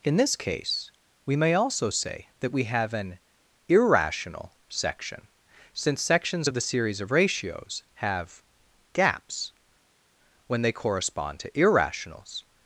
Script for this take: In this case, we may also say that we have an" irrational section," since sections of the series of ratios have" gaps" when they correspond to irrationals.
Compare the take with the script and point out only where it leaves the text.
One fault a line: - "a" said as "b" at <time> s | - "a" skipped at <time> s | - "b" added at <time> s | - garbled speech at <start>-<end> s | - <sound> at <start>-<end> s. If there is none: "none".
none